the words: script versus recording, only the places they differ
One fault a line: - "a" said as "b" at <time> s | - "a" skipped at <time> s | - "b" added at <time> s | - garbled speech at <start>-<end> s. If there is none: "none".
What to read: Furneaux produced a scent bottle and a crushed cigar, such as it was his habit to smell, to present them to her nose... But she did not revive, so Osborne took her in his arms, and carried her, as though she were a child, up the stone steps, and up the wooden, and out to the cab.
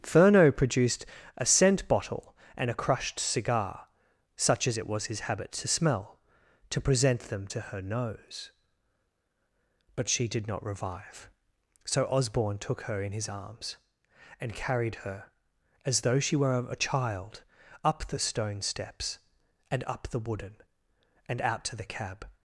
none